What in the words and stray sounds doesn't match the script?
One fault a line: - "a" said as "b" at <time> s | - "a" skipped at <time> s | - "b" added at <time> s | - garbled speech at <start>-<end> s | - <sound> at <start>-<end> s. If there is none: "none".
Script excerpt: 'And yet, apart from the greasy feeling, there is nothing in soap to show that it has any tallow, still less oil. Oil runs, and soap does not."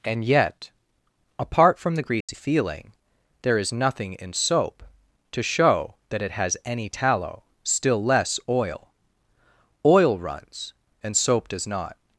- dropout at 2.2-2.3 s